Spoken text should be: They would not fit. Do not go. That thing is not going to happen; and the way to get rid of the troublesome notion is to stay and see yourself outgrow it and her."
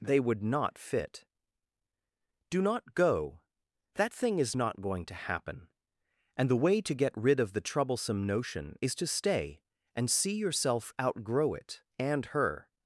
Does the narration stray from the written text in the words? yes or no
no